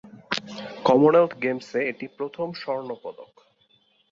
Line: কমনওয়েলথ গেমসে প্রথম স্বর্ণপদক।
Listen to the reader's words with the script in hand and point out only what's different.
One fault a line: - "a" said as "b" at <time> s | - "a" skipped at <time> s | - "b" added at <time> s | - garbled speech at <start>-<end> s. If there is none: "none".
- "এটি" added at 1.9 s